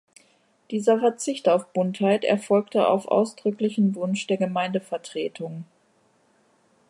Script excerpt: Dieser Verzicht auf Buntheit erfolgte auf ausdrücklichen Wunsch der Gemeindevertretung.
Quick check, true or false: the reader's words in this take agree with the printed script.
true